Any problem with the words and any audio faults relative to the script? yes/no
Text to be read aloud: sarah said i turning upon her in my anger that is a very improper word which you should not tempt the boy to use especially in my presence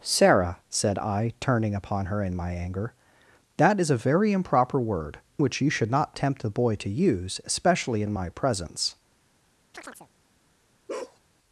yes